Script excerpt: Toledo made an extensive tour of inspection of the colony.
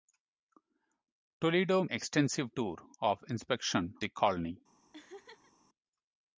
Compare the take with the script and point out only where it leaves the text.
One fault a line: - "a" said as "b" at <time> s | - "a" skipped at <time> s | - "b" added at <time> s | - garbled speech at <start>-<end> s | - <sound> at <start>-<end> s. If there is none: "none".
- "made an" skipped at 1.9 s
- "of" skipped at 4.0 s
- laugh at 4.9-5.5 s